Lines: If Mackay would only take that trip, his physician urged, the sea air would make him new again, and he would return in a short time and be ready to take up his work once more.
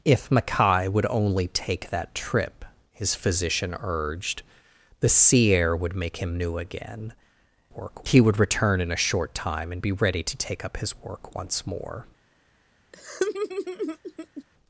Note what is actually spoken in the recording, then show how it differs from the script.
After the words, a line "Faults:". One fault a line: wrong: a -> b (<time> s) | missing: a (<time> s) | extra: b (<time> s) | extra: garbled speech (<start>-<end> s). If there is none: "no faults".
If Mackay would only take that trip, his physician urged, the sea air would make him new again, work he would return in a short time and be ready to take up his work once more.
Faults:
wrong: and -> work (7.7 s)